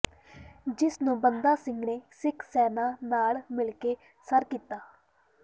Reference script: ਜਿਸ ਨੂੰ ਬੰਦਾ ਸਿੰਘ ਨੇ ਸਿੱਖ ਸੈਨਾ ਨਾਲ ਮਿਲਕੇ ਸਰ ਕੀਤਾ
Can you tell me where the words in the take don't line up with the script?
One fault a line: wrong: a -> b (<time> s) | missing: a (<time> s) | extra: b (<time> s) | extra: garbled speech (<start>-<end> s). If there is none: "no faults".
no faults